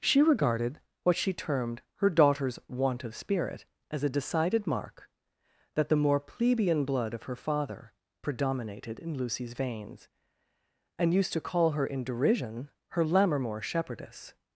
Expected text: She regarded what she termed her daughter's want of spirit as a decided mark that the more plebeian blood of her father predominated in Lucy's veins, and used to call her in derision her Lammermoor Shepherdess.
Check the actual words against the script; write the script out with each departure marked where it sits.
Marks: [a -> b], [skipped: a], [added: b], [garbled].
She regarded what she termed her daughter's want of spirit as a decided mark that the more plebeian blood of her father predominated in Lucy's veins, and used to call her in derision her Lammermoor Shepherdess.